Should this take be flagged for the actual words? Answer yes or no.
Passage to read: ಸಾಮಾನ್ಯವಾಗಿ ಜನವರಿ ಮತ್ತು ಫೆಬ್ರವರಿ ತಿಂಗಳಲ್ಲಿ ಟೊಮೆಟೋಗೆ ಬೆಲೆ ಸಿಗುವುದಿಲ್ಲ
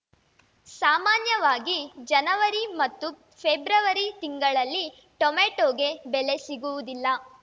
no